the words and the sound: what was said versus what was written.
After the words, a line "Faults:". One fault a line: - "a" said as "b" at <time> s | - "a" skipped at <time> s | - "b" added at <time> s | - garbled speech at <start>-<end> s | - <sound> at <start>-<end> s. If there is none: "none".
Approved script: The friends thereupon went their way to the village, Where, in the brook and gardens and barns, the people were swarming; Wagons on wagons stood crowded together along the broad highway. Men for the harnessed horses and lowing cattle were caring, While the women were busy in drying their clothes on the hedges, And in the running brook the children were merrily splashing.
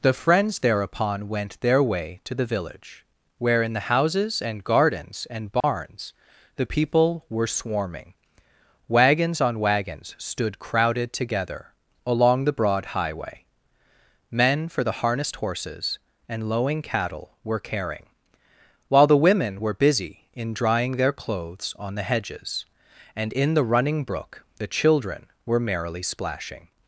The friends thereupon went their way to the village, Where, in the houses and gardens and barns, the people were swarming; Wagons on wagons stood crowded together along the broad highway. Men for the harnessed horses and lowing cattle were caring, While the women were busy in drying their clothes on the hedges, And in the running brook the children were merrily splashing.
Faults:
- "brook" said as "houses" at 3.9 s
- dropout at 5.6-5.6 s